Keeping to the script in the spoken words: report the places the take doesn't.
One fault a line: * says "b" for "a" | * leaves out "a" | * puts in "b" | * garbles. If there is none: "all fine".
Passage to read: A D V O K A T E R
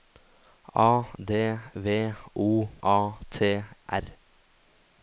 * leaves out "K"
* leaves out "E"